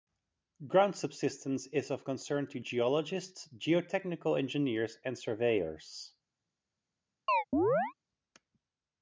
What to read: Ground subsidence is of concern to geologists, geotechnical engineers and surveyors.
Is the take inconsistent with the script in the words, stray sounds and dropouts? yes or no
yes